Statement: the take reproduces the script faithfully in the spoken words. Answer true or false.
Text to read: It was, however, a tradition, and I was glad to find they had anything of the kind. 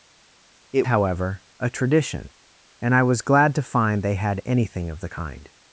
false